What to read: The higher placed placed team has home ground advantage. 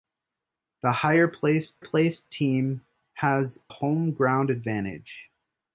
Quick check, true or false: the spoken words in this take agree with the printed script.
true